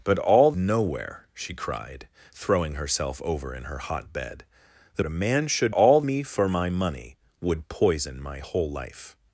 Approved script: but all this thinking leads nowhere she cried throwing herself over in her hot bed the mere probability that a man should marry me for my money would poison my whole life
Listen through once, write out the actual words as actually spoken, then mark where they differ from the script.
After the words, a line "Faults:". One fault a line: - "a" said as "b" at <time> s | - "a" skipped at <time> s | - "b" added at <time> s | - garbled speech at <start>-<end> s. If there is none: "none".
but all nowhere she cried throwing herself over in her hot bed the a man should all me for my money would poison my whole life
Faults:
- "this thinking leads" skipped at 0.5 s
- "mere probability that" skipped at 5.0 s
- "marry" said as "all" at 5.7 s